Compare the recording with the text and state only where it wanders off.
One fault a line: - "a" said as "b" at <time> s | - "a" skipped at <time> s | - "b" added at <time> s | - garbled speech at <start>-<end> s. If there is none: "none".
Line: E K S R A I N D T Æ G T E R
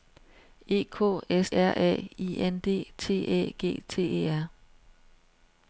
none